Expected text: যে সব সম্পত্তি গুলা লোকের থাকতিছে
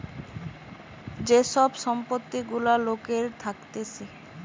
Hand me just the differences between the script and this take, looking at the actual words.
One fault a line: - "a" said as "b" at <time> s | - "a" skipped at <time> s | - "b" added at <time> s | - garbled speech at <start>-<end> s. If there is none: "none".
none